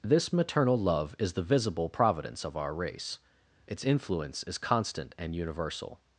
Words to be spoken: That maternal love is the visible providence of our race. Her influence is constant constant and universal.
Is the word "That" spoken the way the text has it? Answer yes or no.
no